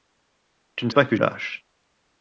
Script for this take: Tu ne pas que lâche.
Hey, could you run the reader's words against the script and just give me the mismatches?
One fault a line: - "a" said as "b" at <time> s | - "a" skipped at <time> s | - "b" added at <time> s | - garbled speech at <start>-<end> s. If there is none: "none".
none